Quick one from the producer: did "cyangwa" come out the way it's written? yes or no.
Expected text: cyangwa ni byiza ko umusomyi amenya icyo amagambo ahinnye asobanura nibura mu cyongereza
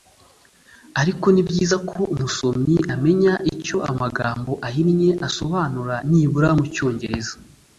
no